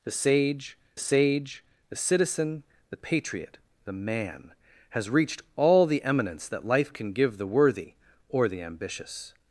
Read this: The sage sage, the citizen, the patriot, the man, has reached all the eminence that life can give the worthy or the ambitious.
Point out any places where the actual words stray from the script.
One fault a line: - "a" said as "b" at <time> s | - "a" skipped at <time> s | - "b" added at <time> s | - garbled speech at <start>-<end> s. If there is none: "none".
none